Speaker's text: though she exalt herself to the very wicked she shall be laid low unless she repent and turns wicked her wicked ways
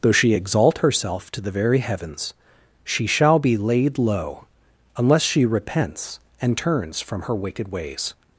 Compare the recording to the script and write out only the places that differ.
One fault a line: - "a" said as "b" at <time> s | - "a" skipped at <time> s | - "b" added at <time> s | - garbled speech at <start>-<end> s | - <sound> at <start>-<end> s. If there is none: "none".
- "wicked" said as "heavens" at 1.8 s
- "repent" said as "repents" at 5.5 s
- "wicked" said as "from" at 7.0 s